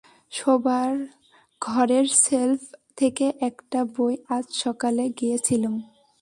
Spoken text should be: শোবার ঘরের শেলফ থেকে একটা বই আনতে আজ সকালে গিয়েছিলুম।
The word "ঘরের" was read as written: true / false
true